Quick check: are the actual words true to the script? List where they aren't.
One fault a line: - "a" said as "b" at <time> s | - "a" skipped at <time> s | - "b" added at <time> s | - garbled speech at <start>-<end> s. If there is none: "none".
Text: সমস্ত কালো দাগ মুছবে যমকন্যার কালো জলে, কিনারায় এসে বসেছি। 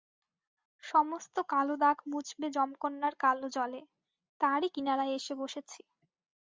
- "তারই" added at 4.4 s